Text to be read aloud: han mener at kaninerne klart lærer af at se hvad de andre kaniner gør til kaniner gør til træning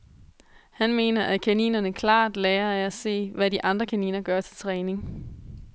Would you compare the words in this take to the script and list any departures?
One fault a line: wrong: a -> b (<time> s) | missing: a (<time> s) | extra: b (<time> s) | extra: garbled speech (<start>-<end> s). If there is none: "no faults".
missing: kaniner gør til (4.6 s)